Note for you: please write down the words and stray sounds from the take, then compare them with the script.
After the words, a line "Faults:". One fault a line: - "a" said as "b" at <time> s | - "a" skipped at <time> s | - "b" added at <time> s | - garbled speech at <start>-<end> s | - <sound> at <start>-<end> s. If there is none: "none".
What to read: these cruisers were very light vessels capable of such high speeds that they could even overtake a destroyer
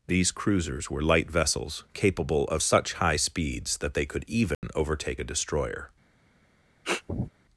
these cruisers were light vessels capable of such high speeds that they could even overtake a destroyer
Faults:
- "very" skipped at 1.0 s
- dropout at 4.5-4.6 s
- sniff at 6.8-7.3 s